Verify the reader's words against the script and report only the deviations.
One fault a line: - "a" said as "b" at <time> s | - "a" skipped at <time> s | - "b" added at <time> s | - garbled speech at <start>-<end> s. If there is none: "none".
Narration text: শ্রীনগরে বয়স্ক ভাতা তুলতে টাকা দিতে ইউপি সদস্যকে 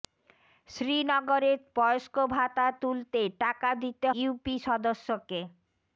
none